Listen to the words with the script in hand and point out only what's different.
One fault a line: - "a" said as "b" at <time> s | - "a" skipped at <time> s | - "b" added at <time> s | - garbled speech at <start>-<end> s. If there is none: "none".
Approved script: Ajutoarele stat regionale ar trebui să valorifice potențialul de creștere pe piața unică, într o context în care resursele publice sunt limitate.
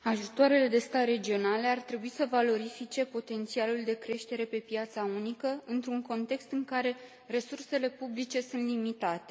- "de" added at 0.6 s
- "o" said as "un" at 5.9 s